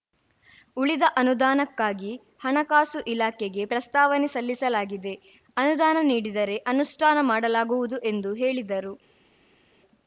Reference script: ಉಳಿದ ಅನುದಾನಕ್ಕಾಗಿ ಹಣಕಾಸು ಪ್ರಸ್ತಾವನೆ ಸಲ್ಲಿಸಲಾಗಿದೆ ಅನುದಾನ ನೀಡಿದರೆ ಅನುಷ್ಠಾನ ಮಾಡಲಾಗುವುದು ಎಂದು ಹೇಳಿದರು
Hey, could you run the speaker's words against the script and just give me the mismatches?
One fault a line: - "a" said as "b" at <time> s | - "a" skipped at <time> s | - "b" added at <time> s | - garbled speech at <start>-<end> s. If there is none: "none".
- "ಇಲಾಖೆಗೆ" added at 3.1 s